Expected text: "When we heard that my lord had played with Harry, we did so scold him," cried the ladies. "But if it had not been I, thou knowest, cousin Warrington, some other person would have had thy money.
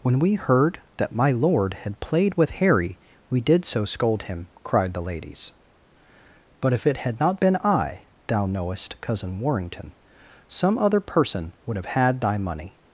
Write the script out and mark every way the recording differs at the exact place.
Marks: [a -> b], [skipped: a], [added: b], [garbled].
"When we heard that my lord had played with Harry, we did so scold him," cried the ladies. "But if it had not been I, thou knowest, cousin Warrington, some other person would have had thy money.